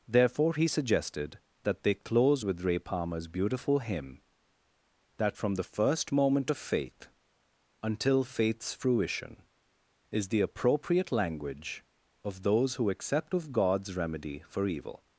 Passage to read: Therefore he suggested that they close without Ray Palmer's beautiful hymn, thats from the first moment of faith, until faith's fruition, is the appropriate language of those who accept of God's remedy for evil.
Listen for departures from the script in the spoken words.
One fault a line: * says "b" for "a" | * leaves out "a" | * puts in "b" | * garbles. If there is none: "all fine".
* says "with" for "without"
* says "that" for "thats"